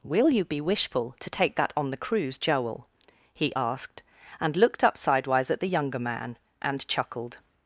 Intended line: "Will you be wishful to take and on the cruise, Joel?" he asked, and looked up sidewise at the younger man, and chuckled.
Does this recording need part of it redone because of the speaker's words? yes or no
yes